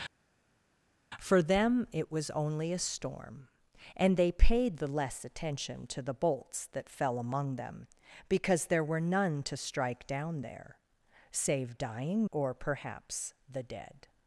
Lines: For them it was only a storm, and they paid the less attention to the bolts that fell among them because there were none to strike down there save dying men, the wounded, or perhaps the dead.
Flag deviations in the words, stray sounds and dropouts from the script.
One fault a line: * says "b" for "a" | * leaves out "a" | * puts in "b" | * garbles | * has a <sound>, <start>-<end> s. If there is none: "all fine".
* leaves out "men the wounded"